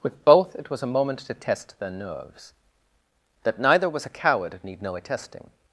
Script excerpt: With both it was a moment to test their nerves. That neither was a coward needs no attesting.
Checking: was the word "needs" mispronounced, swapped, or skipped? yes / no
yes